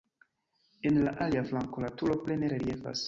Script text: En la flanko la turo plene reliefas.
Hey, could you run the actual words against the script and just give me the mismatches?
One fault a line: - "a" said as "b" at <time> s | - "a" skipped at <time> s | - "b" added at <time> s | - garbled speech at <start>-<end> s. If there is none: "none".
- "alia" added at 1.3 s